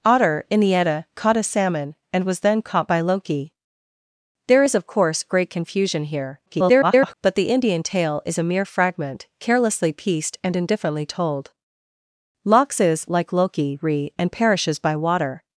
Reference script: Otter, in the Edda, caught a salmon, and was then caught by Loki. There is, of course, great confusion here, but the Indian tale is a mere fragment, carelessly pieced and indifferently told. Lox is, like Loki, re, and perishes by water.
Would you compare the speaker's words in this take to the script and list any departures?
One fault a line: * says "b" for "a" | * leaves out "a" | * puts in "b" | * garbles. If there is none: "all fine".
* garbles